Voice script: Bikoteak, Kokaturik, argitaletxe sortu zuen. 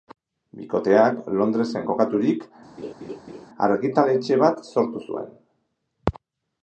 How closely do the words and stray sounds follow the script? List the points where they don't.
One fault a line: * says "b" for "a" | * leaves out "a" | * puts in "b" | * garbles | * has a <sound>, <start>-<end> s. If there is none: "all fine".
* puts in "Londresen"
* has a laugh, 2.8-3.5 s
* puts in "bat"